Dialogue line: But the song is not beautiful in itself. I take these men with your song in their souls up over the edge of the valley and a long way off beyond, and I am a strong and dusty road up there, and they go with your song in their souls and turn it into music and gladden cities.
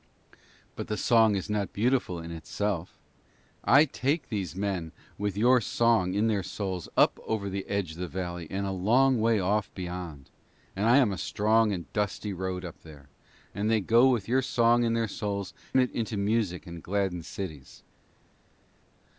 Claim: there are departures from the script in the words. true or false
true